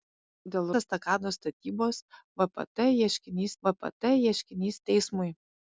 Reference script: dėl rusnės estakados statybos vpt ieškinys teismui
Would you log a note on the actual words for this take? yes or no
yes